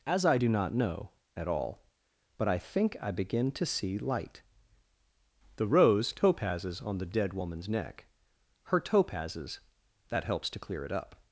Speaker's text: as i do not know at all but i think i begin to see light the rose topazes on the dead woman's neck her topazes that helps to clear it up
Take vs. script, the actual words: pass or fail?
pass